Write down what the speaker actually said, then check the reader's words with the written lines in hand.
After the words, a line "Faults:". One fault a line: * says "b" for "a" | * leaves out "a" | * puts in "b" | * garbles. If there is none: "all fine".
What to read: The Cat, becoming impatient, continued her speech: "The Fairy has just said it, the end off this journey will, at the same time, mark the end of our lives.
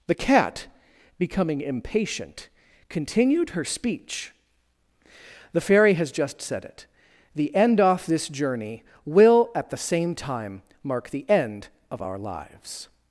The Cat, becoming impatient, continued her speech: "The Fairy has just said it, the end off this journey will, at the same time, mark the end of our lives.
Faults:
all fine